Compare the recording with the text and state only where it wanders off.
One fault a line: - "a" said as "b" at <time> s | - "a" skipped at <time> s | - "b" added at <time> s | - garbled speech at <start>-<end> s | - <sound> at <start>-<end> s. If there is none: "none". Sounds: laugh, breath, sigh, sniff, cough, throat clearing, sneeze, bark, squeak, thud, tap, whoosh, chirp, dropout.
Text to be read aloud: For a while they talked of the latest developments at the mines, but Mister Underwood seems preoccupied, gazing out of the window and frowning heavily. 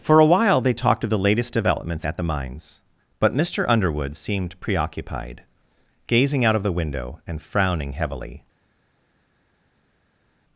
- "seems" said as "seemed" at 4.1 s